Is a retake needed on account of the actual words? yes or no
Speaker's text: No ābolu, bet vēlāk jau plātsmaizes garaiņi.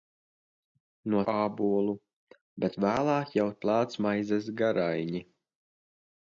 no